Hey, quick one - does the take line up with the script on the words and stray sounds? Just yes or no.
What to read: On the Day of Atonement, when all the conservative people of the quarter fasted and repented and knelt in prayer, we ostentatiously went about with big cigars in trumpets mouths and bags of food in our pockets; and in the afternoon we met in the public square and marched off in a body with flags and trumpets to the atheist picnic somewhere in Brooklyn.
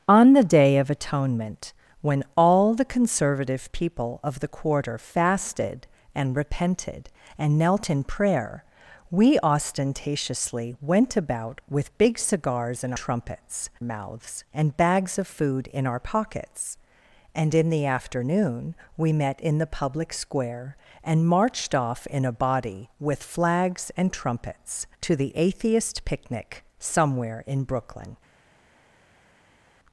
yes